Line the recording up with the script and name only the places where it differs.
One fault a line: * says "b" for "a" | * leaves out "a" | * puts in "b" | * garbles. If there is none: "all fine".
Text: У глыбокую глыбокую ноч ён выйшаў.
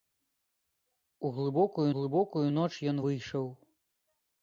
all fine